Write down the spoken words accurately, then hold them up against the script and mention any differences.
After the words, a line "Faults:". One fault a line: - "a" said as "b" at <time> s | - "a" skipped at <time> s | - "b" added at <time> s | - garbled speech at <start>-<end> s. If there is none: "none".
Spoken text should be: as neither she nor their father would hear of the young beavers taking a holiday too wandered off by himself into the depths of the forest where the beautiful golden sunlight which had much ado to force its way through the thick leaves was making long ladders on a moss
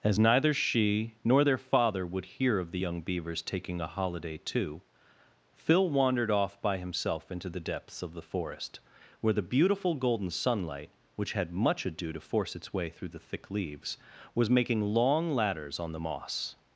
as neither she nor their father would hear of the young beavers taking a holiday too phil wandered off by himself into the depths of the forest where the beautiful golden sunlight which had much ado to force its way through the thick leaves was making long ladders on the moss
Faults:
- "phil" added at 5.5 s
- "a" said as "the" at 15.9 s